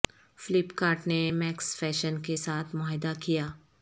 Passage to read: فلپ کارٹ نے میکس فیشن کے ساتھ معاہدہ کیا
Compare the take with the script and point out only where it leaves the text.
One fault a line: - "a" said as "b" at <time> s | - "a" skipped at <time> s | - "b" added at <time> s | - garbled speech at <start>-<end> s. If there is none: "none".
none